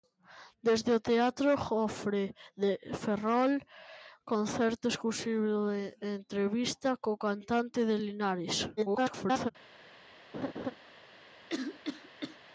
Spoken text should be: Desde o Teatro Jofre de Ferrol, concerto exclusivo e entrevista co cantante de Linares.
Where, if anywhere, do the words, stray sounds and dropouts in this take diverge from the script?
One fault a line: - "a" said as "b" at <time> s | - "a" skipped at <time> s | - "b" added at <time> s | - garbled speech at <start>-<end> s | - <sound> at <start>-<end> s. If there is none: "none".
- garbled speech at 8.8-9.5 s
- laugh at 10.3-10.8 s
- cough at 11.5-12.4 s